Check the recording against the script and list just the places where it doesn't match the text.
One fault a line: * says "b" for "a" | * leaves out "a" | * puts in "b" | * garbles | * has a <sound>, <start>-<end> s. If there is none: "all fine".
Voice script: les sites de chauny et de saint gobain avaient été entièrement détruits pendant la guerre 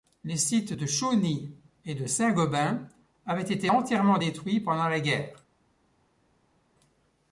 all fine